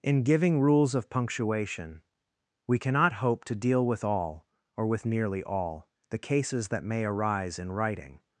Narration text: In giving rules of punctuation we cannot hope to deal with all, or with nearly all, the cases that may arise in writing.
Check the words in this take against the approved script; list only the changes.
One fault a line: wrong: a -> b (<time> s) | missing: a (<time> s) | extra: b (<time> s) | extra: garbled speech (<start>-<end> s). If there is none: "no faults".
no faults